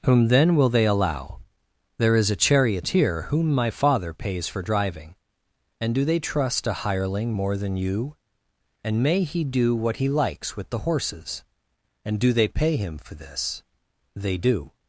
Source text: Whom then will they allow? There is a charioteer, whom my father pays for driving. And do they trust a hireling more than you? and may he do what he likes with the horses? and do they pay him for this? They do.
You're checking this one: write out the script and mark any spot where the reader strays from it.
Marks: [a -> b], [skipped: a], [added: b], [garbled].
Whom then will they allow? There is a charioteer, whom my father pays for driving. And do they trust a hireling more than you? and may he do what he likes with the horses? and do they pay him for this? They do.